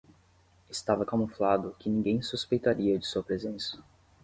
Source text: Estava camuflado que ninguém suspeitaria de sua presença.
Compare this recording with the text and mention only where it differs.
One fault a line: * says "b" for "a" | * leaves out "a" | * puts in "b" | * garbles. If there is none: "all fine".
all fine